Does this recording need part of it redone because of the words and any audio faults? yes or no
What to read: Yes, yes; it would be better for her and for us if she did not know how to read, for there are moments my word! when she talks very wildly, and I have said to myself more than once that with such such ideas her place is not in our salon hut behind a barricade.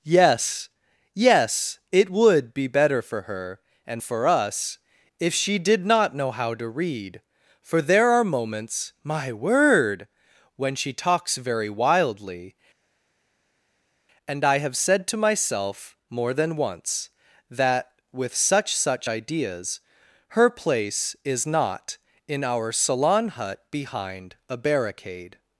no